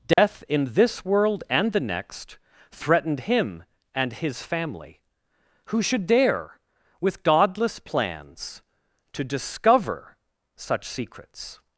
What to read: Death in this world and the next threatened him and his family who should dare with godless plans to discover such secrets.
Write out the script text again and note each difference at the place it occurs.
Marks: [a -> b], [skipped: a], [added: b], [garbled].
Death in this world and the next threatened him and his family who should dare with godless plans to discover such secrets.